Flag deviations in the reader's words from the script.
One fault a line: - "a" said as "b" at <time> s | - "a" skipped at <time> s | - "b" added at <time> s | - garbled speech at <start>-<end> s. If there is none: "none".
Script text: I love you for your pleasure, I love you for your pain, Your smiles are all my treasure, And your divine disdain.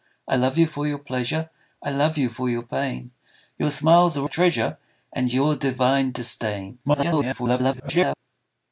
- "all my" skipped at 4.3 s
- garbled speech at 6.8-8.2 s